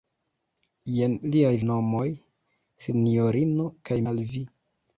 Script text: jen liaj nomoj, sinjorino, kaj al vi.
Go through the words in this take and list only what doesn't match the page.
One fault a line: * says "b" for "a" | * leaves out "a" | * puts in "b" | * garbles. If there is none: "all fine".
all fine